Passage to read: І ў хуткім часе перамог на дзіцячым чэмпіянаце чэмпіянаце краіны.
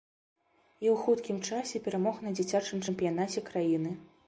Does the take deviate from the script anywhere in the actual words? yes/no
yes